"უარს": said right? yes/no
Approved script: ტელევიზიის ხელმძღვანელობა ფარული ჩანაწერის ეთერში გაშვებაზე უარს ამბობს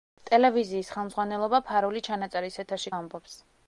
no